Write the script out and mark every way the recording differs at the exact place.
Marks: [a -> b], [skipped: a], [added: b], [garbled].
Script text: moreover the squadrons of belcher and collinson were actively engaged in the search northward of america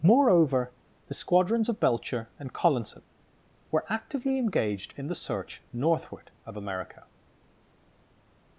moreover the squadrons of belcher and collinson were actively engaged in the search northward of america